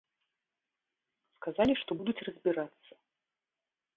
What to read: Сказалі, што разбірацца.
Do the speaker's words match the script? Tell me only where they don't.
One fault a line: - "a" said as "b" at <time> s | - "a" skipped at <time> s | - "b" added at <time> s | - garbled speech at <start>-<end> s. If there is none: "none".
- "будуць" added at 2.0 s